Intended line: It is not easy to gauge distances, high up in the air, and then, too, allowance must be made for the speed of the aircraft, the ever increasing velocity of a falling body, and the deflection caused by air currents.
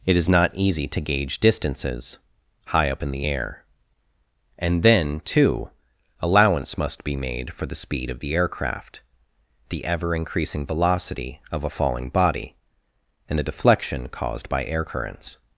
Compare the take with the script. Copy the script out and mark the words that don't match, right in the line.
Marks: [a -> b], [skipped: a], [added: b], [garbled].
It is not easy to gauge distances, high up in the air, and then, too, allowance must be made for the speed of the aircraft, the ever increasing velocity of a falling body, and the deflection caused by air currents.